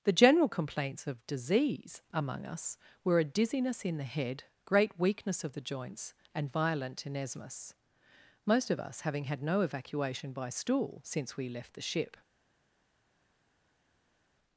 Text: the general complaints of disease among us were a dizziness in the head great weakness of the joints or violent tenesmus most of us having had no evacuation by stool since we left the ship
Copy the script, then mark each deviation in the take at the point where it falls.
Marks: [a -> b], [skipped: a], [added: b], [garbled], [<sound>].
the general complaints of disease among us were a dizziness in the head great weakness of the joints [or -> and] violent tenesmus most of us having had no evacuation by stool since we left the ship